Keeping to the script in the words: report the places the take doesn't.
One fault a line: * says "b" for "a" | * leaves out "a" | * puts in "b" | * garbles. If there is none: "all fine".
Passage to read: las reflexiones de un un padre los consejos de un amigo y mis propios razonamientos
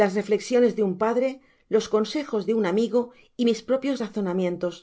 * leaves out "un"